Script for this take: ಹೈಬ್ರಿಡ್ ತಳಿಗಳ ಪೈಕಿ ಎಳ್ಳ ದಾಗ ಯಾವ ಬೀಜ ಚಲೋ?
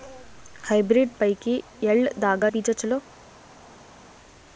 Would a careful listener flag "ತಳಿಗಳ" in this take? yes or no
yes